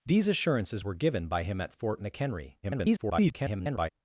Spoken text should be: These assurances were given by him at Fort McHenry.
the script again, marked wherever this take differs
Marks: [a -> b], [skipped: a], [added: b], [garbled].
These assurances were given by him at Fort McHenry. [garbled]